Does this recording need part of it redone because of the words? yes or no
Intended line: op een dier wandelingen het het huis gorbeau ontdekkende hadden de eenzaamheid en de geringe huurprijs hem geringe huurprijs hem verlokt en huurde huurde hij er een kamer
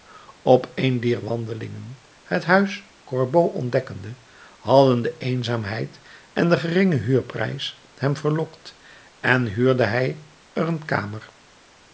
yes